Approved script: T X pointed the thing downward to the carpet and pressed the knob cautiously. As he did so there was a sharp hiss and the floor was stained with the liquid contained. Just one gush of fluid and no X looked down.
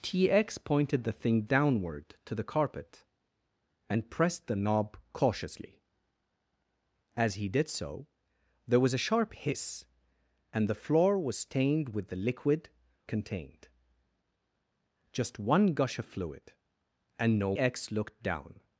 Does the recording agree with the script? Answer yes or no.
yes